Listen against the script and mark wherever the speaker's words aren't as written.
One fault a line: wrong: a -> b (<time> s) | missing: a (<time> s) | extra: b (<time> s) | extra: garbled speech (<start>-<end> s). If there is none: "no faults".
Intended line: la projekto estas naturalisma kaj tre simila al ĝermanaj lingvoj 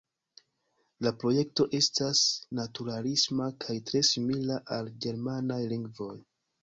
no faults